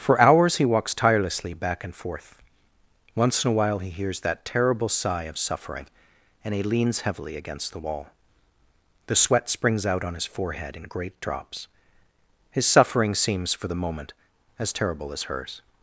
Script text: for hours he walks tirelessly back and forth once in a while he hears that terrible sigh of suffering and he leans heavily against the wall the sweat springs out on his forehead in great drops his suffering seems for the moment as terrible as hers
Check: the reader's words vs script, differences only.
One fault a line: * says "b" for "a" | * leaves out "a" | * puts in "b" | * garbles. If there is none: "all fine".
all fine